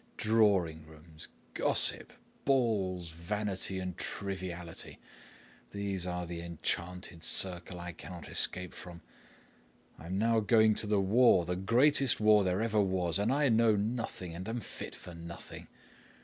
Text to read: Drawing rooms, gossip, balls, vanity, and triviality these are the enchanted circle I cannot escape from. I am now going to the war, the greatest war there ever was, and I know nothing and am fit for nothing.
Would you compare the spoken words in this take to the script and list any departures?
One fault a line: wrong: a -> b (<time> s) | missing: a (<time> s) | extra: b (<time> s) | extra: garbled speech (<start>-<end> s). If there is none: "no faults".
no faults